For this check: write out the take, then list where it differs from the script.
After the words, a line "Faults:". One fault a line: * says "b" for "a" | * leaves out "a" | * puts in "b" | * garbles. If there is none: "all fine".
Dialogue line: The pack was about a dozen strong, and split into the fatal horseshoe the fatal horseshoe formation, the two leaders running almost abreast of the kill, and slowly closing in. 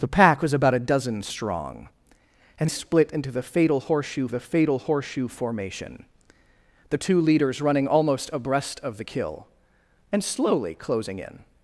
The pack was about a dozen strong, and split into the fatal horseshoe the fatal horseshoe formation, the two leaders running almost abreast of the kill, and slowly closing in.
Faults:
all fine